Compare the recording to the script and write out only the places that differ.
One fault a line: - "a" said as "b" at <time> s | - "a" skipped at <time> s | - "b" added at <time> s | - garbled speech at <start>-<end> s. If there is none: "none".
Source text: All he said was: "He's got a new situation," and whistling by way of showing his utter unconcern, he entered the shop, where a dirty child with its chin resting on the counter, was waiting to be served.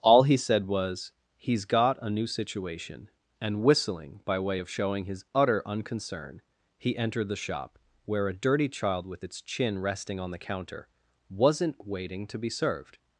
- "was" said as "wasn't" at 11.3 s